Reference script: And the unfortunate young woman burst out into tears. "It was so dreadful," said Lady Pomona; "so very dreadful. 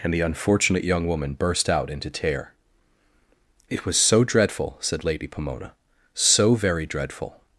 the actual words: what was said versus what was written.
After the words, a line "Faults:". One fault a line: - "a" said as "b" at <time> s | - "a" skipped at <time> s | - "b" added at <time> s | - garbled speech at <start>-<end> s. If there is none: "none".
And the unfortunate young woman burst out into tear. "It was so dreadful," said Lady Pomona; "so very dreadful.
Faults:
- "tears" said as "tear" at 2.1 s